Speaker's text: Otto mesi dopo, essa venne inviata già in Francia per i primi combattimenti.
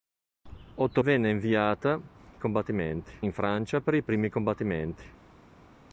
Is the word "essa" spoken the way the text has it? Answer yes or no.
no